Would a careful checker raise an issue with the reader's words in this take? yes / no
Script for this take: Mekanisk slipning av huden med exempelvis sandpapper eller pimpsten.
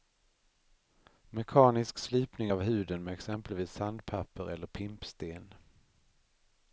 no